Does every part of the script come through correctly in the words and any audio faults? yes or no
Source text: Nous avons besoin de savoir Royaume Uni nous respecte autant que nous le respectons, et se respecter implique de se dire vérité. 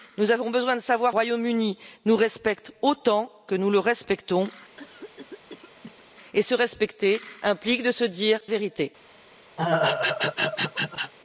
no